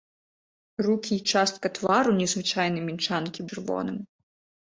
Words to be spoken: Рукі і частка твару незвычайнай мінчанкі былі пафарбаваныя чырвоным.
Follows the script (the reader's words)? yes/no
no